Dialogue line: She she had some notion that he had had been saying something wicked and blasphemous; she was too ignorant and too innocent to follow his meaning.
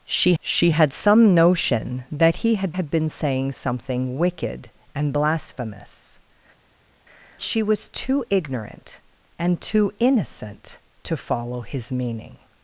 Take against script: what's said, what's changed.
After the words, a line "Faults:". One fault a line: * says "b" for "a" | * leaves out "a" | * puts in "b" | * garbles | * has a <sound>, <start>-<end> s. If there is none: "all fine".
She she had some notion that he had had been saying something wicked and blasphemous; she was too ignorant and too innocent to follow his meaning.
Faults:
all fine